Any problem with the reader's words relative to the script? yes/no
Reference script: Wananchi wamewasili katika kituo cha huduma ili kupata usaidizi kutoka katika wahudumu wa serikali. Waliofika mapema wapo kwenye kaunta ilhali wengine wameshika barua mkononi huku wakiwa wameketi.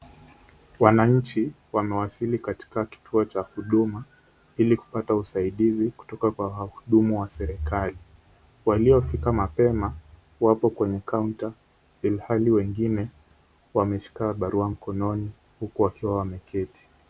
yes